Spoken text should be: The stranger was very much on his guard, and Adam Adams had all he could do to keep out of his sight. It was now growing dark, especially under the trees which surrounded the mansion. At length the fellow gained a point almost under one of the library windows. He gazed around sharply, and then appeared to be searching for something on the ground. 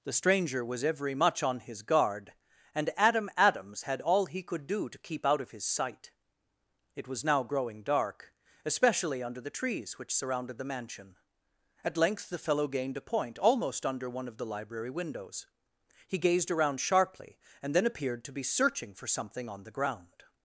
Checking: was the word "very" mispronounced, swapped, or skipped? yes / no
yes